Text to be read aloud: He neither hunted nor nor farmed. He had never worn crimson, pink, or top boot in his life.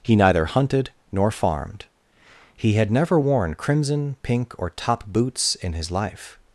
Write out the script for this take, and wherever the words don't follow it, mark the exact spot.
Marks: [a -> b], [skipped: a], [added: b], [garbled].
He neither hunted nor [skipped: nor] farmed. He had never worn crimson, pink, or top [boot -> boots] in his life.